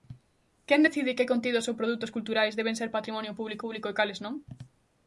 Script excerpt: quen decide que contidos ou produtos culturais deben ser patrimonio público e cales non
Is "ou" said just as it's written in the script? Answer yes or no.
yes